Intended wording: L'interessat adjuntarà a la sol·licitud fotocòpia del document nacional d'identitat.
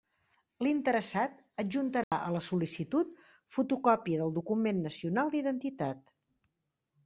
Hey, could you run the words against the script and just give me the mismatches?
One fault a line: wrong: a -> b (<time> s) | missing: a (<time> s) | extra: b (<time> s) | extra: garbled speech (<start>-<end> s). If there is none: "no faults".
no faults